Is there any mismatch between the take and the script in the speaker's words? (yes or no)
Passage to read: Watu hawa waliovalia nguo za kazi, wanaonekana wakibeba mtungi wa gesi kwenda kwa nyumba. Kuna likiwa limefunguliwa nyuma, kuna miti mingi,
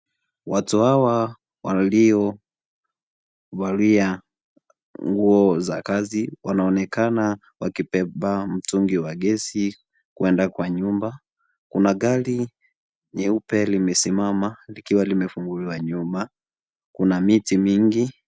yes